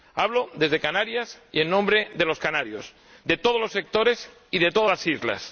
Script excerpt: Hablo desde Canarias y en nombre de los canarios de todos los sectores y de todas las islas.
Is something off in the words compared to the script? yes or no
no